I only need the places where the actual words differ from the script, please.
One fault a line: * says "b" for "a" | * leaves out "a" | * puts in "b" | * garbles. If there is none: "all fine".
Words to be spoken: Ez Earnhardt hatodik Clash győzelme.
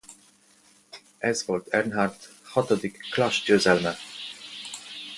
* puts in "volt"